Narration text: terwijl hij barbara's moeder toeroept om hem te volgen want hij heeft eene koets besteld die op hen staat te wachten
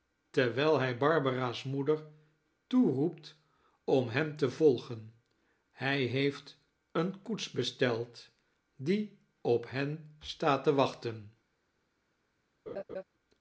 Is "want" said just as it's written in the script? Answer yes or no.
no